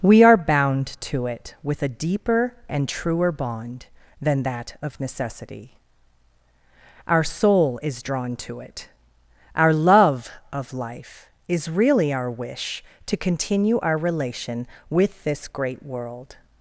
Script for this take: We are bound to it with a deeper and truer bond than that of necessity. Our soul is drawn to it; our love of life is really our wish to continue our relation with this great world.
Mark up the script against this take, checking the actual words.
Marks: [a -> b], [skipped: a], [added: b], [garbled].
We are bound to it with a deeper and truer bond than that of necessity. Our soul is drawn to it; our love of life is really our wish to continue our relation with this great world.